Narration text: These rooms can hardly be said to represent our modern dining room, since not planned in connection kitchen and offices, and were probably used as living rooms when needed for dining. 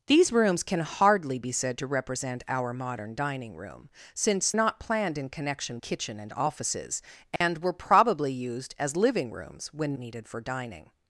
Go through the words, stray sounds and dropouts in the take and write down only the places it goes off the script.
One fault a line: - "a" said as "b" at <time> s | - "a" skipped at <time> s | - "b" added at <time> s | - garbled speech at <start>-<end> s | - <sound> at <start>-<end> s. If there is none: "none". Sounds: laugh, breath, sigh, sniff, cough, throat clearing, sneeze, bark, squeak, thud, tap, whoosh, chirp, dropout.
- dropout at 7.4-7.4 s